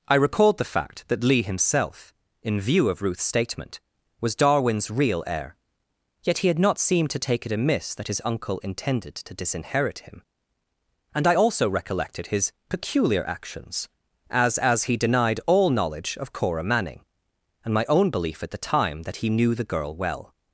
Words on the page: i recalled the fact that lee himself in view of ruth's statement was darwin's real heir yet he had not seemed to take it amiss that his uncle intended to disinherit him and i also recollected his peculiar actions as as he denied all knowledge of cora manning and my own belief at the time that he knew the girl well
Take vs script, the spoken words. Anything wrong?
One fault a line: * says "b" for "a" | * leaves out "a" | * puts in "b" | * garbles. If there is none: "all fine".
all fine